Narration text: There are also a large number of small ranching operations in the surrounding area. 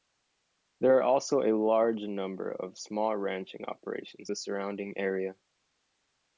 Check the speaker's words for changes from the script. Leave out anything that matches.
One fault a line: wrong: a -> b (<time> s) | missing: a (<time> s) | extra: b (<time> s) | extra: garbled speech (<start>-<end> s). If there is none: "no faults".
missing: in (4.3 s)